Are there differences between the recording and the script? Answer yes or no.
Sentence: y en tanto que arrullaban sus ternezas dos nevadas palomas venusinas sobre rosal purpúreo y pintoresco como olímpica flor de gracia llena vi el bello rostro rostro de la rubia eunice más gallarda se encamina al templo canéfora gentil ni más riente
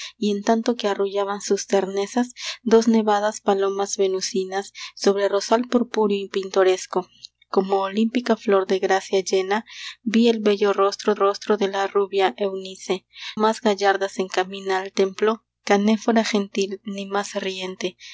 no